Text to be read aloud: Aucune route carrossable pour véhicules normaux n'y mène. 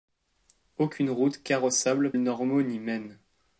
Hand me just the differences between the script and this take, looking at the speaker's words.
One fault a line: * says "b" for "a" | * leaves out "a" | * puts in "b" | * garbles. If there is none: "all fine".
* leaves out "pour véhicules"